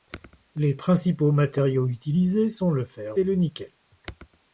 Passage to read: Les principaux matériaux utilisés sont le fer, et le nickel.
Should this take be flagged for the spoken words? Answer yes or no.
no